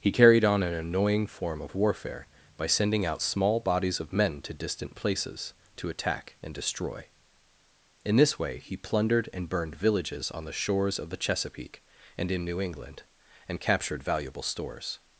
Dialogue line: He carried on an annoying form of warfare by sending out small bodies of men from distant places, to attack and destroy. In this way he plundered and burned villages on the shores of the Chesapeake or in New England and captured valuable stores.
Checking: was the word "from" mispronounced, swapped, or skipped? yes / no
yes